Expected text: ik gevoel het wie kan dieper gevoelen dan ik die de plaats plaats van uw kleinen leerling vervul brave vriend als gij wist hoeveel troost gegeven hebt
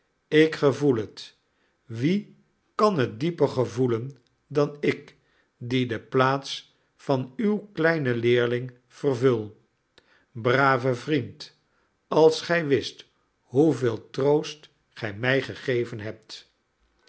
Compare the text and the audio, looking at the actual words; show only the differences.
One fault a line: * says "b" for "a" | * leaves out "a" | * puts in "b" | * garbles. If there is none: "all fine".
* puts in "het"
* leaves out "plaats"
* puts in "gij mij"